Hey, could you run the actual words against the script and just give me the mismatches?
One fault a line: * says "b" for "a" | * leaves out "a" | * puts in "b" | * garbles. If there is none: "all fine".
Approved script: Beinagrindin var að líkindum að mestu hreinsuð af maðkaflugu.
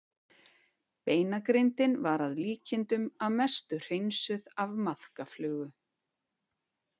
all fine